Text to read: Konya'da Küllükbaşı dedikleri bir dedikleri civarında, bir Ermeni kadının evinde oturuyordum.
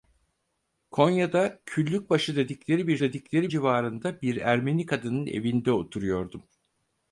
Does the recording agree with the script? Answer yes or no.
yes